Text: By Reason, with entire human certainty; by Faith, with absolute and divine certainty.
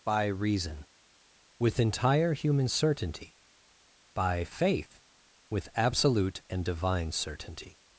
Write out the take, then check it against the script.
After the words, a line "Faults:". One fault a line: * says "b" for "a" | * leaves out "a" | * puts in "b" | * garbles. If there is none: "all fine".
By Reason, with entire human certainty; by Faith, with absolute and divine certainty.
Faults:
all fine